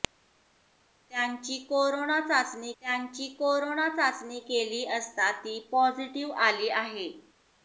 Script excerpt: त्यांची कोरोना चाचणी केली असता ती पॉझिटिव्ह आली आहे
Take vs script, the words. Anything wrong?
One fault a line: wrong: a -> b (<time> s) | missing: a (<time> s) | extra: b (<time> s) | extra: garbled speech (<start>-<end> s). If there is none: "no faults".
extra: त्यांची कोरोना चाचणी (2.8 s)